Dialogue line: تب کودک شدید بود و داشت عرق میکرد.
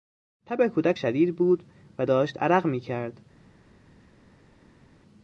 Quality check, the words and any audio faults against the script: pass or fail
pass